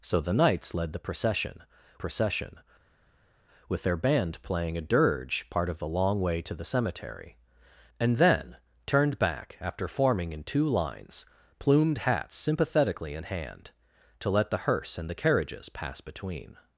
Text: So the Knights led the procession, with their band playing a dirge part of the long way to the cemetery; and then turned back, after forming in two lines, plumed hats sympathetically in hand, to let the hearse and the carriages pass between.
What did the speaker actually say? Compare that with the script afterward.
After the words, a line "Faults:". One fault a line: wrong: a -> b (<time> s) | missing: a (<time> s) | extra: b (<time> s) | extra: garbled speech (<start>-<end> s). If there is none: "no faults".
So the Knights led the procession procession, with their band playing a dirge part of the long way to the cemetery; and then turned back, after forming in two lines, plumed hats sympathetically in hand, to let the hearse and the carriages pass between.
Faults:
extra: procession (1.9 s)